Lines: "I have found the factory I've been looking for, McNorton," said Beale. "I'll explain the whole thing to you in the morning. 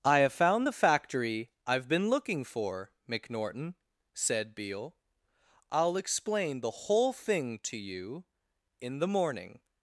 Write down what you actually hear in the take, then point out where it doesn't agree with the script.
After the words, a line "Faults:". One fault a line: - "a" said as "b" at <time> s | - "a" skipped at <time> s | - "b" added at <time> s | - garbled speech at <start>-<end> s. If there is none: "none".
"I have found the factory I've been looking for, McNorton," said Beale. "I'll explain the whole thing to you in the morning.
Faults:
none